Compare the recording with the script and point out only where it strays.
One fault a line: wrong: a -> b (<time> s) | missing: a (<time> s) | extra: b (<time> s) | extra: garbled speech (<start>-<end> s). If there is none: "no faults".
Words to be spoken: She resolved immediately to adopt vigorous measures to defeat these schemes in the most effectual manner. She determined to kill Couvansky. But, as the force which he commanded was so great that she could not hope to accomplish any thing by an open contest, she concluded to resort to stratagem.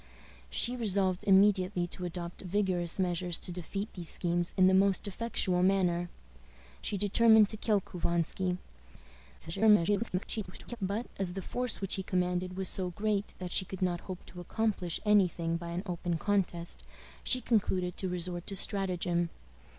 extra: garbled speech (9.4-10.8 s)